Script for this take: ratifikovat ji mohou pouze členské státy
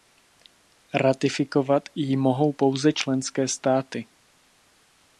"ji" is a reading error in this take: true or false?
false